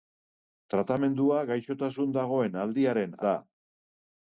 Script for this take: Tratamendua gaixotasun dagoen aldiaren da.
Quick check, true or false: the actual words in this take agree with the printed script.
true